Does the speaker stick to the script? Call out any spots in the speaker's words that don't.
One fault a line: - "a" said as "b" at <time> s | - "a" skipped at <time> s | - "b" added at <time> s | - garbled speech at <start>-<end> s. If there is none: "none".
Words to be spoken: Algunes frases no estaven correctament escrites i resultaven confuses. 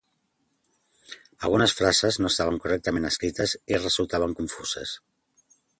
none